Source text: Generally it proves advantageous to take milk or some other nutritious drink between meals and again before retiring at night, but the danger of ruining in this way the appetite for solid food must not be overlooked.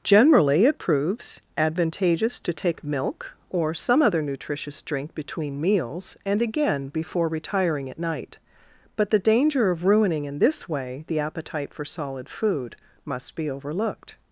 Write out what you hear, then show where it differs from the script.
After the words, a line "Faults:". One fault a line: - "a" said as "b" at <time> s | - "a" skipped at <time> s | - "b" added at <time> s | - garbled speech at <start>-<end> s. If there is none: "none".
Generally it proves advantageous to take milk or some other nutritious drink between meals and again before retiring at night, but the danger of ruining in this way the appetite for solid food must be overlooked.
Faults:
- "not" skipped at 13.3 s